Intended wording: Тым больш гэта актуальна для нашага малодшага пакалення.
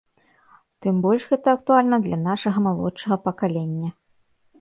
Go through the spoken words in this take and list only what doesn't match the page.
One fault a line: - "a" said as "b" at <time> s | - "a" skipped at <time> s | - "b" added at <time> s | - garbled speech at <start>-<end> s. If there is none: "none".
none